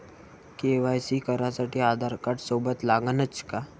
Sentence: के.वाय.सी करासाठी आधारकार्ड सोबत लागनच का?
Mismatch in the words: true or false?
false